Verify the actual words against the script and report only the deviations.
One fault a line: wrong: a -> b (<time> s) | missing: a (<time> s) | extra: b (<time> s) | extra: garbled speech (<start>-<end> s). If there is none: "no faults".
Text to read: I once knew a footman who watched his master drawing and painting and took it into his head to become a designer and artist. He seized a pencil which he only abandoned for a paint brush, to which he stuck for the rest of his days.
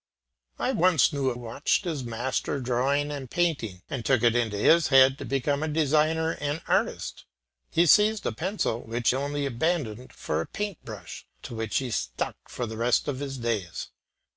missing: footman who (1.4 s)
missing: he (9.1 s)